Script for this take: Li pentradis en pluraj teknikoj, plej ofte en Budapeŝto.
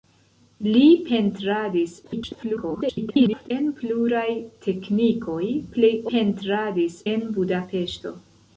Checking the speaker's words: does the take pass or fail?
fail